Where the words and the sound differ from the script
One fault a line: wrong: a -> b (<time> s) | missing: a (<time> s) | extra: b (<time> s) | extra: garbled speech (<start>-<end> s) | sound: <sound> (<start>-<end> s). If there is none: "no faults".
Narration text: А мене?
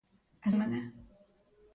no faults